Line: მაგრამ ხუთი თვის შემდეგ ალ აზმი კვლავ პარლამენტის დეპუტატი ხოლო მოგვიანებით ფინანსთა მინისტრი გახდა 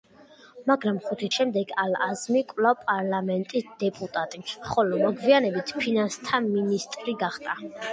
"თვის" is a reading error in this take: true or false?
true